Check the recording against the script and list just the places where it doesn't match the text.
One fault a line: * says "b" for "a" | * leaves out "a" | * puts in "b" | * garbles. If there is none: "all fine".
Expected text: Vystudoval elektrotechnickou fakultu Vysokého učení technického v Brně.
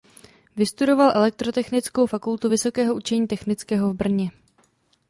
all fine